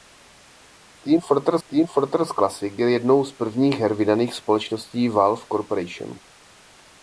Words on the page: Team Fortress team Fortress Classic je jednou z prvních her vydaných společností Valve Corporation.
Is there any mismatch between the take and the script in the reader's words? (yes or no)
no